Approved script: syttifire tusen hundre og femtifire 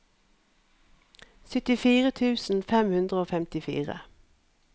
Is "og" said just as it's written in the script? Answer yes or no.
yes